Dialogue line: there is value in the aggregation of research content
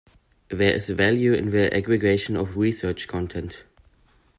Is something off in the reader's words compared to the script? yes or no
no